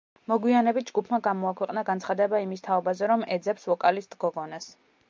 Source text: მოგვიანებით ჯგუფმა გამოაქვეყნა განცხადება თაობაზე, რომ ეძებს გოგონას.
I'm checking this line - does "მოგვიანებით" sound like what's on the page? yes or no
yes